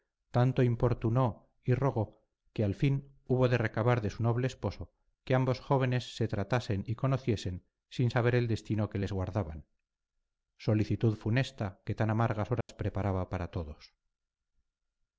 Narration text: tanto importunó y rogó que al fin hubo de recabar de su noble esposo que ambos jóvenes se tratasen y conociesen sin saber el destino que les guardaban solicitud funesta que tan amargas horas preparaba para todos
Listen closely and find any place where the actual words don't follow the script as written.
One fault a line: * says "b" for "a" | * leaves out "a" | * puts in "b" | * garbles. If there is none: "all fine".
all fine